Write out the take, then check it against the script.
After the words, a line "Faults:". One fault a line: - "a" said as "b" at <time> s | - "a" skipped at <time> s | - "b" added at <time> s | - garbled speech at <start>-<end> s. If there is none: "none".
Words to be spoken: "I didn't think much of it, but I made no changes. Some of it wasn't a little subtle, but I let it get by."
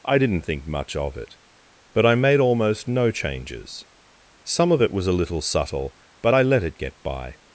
"I didn't think much of it, but I made almost no changes. Some of it was a little subtle, but I let it get by."
Faults:
- "almost" added at 2.4 s
- "wasn't" said as "was" at 4.9 s